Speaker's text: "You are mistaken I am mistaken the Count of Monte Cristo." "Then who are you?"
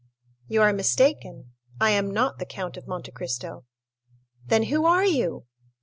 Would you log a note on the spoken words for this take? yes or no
yes